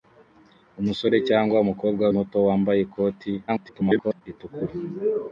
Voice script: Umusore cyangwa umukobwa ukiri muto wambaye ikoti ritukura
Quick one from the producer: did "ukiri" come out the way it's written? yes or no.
no